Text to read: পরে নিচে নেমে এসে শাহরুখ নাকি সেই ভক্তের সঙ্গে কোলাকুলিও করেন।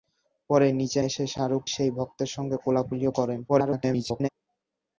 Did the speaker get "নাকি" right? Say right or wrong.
wrong